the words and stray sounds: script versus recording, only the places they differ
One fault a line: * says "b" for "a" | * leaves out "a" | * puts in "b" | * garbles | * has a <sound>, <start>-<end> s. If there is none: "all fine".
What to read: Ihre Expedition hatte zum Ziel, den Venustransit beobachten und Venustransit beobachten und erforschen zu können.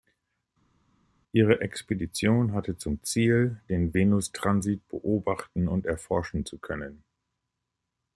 * leaves out "Venustransit beobachten und"